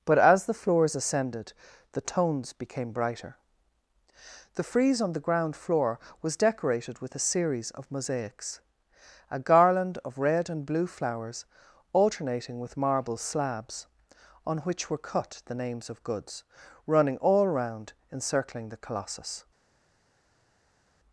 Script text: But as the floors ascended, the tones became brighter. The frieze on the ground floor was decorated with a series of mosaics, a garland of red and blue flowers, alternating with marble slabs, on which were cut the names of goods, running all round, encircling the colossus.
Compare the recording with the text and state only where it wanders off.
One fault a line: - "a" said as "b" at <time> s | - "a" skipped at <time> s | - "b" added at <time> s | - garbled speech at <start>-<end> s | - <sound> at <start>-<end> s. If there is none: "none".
none